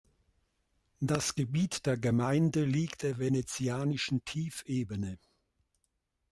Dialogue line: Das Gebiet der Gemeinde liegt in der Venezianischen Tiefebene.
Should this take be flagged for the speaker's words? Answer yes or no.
yes